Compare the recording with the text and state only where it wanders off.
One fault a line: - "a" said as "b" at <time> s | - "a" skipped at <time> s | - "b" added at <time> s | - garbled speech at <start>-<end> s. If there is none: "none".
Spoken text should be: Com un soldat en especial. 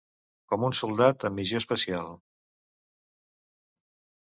- "missió" added at 1.4 s